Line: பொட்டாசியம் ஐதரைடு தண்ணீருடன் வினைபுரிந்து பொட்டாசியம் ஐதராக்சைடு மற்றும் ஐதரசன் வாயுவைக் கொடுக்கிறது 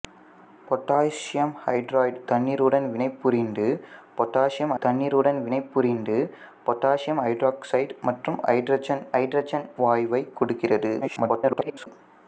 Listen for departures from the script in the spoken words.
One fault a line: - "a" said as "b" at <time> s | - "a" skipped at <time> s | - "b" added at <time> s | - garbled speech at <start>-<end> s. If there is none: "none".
- "தண்ணீருடன் வினைபுரிந்து பொட்டாசியம்" added at 4.8 s
- "ஐதரசன்" added at 9.2 s
- garbled speech at 11.0-11.9 s